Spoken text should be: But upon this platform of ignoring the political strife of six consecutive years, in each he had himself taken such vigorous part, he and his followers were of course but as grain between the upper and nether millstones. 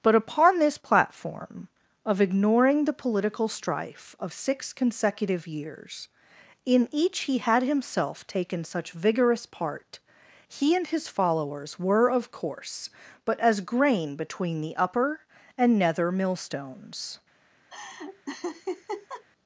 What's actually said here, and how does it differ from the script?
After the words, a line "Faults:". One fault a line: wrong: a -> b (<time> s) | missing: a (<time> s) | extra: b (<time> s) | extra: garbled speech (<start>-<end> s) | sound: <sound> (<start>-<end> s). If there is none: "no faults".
But upon this platform of ignoring the political strife of six consecutive years, in each he had himself taken such vigorous part, he and his followers were of course but as grain between the upper and nether millstones.
Faults:
sound: laugh (17.7-19.2 s)